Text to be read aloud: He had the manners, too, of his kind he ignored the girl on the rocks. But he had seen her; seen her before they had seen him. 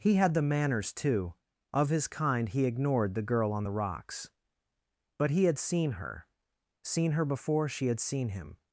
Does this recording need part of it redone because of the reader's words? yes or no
yes